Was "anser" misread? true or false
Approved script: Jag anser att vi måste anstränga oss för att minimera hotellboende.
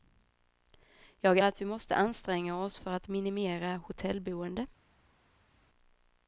true